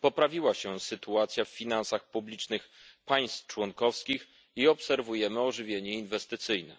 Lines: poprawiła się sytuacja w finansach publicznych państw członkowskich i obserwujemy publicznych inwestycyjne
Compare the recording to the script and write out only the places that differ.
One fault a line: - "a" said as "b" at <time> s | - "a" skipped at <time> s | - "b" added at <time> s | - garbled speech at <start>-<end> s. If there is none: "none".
- "publicznych" said as "ożywienie" at 5.4 s